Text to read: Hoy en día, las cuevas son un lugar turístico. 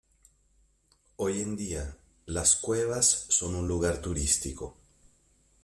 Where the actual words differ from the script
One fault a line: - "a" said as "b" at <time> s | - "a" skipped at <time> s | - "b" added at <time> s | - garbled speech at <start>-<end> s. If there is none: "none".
none